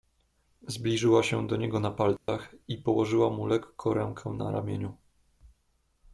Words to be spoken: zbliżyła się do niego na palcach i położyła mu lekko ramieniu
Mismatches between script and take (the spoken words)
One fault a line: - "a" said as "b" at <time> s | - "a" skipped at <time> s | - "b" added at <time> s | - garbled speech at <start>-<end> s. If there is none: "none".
- "rękę na" added at 3.9 s